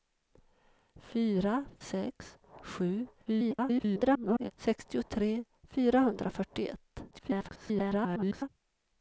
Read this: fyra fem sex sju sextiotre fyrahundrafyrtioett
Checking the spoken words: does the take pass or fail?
fail